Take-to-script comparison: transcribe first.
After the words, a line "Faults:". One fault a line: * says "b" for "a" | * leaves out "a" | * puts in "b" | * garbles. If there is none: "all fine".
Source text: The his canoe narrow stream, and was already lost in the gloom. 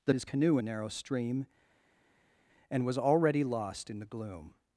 The his canoe narrow stream, and was already lost in the gloom.
Faults:
all fine